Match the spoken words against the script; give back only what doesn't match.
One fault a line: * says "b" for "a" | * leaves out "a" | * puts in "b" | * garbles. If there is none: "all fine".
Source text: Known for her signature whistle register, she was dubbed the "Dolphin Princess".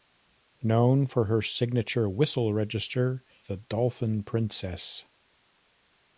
* leaves out "she was dubbed"